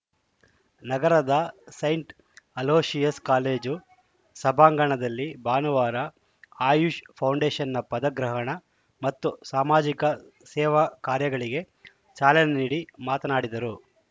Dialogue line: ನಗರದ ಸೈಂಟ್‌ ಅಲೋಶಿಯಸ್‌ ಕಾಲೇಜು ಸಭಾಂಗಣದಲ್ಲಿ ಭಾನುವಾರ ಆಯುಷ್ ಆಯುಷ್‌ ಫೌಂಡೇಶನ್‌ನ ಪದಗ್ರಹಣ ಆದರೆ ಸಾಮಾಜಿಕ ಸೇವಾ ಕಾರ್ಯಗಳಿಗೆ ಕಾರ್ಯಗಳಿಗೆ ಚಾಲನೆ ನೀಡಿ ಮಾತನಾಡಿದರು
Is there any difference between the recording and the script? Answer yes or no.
yes